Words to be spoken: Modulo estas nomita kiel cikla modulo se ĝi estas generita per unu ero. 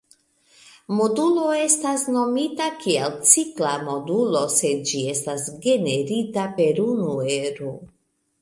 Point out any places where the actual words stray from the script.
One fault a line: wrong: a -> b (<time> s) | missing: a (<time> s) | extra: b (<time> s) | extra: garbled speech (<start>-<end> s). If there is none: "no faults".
no faults